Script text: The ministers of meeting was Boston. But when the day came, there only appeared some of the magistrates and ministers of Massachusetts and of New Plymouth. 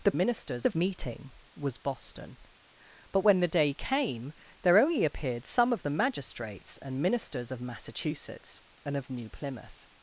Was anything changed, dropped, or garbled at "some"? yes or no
no